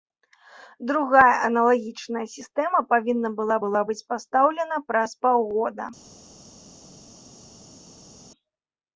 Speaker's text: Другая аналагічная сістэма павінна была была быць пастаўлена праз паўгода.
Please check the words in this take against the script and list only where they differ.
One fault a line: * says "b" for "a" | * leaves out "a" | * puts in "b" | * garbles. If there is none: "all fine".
all fine